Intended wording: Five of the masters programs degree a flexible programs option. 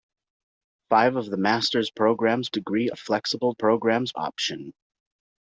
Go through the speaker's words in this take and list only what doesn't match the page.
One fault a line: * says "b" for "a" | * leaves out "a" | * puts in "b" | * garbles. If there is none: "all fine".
all fine